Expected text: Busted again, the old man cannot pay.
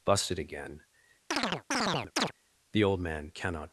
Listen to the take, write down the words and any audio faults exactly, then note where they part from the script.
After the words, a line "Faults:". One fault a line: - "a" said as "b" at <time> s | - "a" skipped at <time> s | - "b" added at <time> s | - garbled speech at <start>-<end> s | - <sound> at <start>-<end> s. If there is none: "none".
Busted again, the old man cannot.
Faults:
- chirp at 1.3-2.3 s
- "pay" skipped at 3.6 s